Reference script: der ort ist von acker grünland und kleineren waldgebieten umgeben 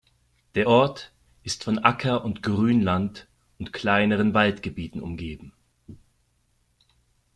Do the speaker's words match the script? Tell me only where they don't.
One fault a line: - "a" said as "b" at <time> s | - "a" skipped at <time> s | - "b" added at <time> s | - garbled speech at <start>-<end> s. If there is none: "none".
- "und" added at 2.2 s